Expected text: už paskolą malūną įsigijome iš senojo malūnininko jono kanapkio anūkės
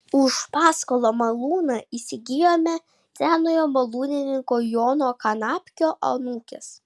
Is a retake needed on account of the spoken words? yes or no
yes